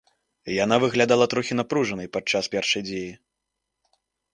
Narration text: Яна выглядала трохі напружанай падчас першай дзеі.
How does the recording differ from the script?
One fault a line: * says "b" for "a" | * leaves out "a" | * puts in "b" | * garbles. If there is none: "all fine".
all fine